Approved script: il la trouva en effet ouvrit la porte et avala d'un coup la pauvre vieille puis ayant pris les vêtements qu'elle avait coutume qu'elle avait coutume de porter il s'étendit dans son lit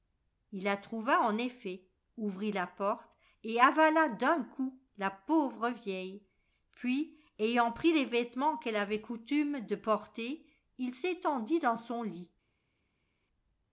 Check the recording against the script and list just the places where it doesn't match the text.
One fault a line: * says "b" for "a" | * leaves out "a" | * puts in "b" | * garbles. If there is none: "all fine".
* leaves out "qu'elle avait coutume"